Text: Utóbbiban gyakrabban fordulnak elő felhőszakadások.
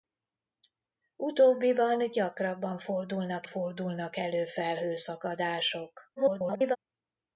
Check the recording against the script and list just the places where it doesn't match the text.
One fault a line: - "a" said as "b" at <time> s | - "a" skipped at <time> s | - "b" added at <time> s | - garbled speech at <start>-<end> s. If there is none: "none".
- "fordulnak" added at 3.4 s
- garbled speech at 6.2-6.8 s